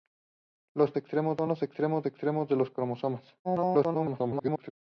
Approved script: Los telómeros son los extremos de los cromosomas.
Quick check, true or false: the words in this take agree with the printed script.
false